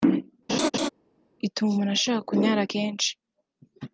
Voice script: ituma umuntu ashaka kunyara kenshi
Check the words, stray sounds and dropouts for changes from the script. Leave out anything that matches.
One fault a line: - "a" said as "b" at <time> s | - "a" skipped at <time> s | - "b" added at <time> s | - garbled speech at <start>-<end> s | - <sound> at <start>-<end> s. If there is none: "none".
- laugh at 0.5-0.9 s